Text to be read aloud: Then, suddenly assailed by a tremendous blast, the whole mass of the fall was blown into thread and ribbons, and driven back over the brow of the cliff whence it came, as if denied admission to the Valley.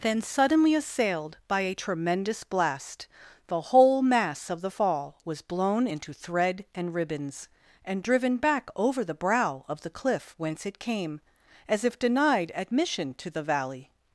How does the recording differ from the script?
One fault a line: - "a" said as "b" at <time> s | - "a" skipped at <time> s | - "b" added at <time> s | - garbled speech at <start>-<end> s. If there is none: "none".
none